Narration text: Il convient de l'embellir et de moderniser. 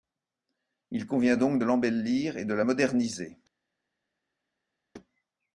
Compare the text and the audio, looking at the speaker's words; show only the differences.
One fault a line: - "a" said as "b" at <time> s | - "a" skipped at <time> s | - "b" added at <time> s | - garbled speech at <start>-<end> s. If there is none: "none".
- "donc" added at 1.4 s
- "la" added at 2.5 s